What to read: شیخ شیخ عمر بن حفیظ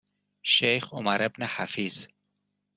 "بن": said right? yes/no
yes